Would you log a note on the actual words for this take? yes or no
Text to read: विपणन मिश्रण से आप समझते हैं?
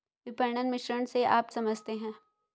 no